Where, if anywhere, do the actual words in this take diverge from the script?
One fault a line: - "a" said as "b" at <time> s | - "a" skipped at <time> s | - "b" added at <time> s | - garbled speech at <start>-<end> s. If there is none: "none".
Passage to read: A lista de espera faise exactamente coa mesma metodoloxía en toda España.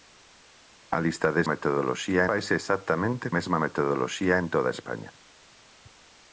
- "espera" said as "metodoloxía" at 1.5 s
- "coa" skipped at 3.3 s